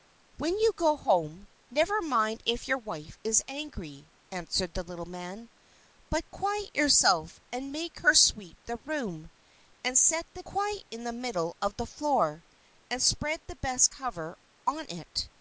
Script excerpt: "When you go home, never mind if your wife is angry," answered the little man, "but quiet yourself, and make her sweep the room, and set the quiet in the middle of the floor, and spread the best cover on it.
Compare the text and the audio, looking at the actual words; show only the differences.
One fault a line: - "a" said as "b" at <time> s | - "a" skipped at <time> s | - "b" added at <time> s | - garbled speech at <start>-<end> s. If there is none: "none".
none